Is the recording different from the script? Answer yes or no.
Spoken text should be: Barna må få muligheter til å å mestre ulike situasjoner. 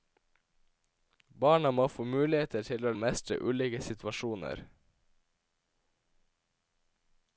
no